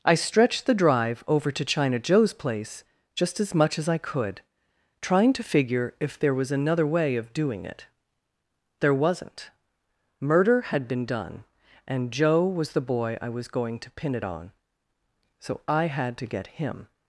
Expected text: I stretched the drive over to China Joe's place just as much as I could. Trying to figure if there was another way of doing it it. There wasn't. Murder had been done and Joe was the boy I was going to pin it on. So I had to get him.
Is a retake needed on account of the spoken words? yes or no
yes